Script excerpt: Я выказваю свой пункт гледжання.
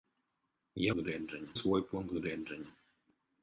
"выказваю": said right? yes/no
no